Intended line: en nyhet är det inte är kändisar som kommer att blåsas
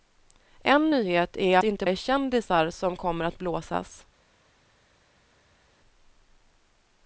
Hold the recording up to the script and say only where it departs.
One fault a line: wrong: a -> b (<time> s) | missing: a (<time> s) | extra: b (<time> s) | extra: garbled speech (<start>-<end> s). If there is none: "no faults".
no faults